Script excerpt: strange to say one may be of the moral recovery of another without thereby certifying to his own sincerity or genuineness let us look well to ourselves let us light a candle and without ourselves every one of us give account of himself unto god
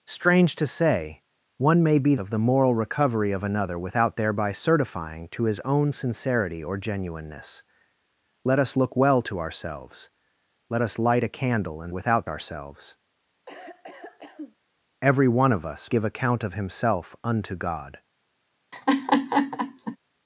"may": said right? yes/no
yes